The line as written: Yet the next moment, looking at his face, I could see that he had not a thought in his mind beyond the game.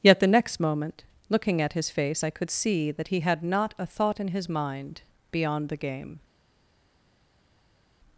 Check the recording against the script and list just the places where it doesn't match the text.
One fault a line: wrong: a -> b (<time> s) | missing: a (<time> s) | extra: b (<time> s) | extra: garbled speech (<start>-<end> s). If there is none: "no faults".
no faults